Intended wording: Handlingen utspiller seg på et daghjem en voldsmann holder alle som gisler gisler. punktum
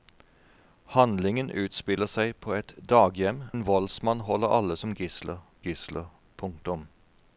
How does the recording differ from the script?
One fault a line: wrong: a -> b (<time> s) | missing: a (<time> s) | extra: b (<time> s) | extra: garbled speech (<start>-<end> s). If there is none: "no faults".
no faults